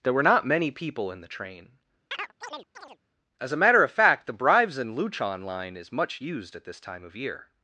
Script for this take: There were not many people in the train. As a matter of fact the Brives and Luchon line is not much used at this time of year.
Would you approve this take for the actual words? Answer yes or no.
no